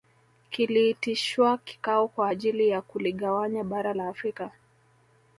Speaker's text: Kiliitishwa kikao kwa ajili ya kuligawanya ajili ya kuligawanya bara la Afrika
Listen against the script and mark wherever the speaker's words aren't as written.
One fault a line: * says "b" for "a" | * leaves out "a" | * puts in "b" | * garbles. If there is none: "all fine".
* leaves out "ajili ya kuligawanya"